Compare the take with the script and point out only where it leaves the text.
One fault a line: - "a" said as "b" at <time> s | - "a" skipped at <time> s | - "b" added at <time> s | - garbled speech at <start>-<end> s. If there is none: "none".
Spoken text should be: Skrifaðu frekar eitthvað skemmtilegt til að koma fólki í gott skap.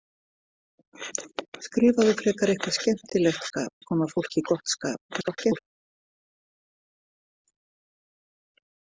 - "til" said as "skap" at 3.5 s
- garbled speech at 5.1-5.6 s